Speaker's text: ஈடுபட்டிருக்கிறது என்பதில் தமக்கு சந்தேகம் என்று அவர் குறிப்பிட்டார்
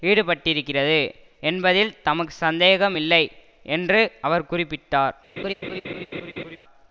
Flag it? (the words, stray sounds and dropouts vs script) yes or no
yes